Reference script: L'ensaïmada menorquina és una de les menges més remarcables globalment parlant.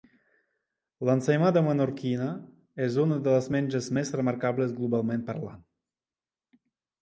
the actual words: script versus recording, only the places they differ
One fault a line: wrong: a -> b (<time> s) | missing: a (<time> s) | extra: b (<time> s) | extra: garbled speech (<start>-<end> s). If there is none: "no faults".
no faults